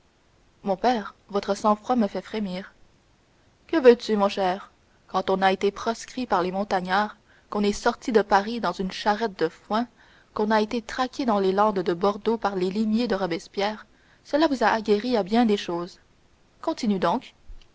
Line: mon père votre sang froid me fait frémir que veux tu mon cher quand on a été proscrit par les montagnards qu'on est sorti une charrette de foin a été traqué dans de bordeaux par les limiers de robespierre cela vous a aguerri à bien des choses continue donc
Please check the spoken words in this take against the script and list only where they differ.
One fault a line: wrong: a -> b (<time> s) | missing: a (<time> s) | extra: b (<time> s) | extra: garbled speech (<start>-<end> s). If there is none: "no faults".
extra: de paris dans (8.1 s)
extra: qu'on (10.3 s)
extra: les landes (11.4 s)